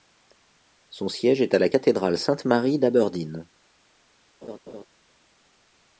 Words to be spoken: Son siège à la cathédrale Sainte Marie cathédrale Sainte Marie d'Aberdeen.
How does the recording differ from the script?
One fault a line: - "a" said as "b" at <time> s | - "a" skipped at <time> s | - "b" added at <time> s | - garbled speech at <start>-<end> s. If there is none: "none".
- "est" added at 1.4 s
- "cathédrale Sainte Marie" skipped at 2.8 s